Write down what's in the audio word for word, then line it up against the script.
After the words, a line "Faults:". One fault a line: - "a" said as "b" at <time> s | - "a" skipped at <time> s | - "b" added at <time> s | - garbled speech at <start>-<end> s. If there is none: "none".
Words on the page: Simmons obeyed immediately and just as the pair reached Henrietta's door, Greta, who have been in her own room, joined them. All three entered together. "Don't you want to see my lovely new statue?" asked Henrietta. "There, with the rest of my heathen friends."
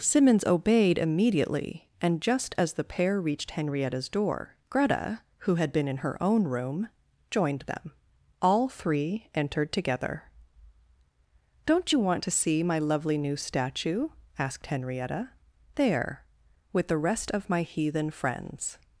Simmons obeyed immediately and just as the pair reached Henrietta's door, Greta, who had been in her own room, joined them. All three entered together. "Don't you want to see my lovely new statue?" asked Henrietta. "There, with the rest of my heathen friends."
Faults:
- "have" said as "had" at 5.5 s